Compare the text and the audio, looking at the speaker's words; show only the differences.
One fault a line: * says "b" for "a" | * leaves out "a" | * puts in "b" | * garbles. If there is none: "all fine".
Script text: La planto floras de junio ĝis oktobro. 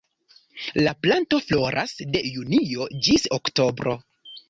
all fine